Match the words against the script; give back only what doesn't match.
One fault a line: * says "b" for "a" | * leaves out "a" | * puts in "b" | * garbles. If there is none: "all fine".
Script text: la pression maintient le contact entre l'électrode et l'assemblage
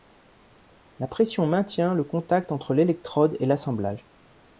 all fine